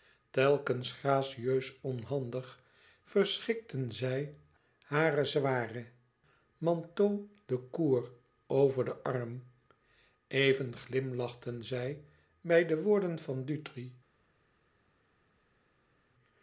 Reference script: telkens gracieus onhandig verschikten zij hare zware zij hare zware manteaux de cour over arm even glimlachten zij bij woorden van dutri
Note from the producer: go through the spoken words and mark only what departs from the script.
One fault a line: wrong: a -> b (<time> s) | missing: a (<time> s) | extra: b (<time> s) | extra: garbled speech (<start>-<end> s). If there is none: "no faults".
missing: zij hare zware (5.8 s)
extra: den (8.8 s)
extra: de (12.7 s)